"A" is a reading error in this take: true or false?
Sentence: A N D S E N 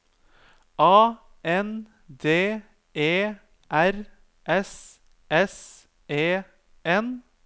false